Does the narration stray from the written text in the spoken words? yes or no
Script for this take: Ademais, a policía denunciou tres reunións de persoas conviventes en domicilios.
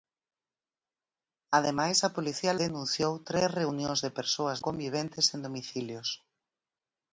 no